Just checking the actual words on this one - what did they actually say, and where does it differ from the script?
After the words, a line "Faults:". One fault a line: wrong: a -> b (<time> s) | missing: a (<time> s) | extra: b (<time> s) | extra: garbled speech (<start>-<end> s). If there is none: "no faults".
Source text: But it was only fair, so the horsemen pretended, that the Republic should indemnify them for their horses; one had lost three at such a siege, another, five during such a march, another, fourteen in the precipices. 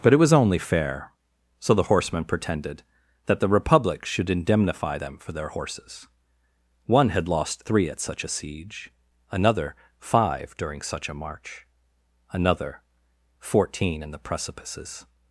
But it was only fair, so the horsemen pretended, that the Republic should indemnify them for their horses; one had lost three at such a siege, another, five during such a march, another, fourteen in the precipices.
Faults:
no faults